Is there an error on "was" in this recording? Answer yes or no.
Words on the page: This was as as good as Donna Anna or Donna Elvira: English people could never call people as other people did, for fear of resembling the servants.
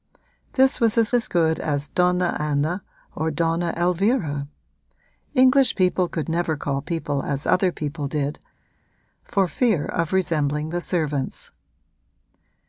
no